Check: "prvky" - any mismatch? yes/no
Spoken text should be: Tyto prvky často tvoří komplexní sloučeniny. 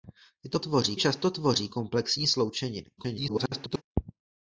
yes